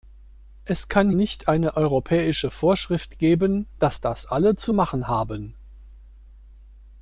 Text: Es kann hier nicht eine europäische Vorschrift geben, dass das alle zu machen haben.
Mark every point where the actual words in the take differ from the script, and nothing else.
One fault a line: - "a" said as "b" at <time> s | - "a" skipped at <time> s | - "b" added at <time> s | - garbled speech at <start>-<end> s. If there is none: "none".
- "hier" skipped at 1.1 s